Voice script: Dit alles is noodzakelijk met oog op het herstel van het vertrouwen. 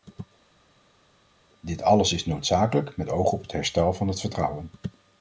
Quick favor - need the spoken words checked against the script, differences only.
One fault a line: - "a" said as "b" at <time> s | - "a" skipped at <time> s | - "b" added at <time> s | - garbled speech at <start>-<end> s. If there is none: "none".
none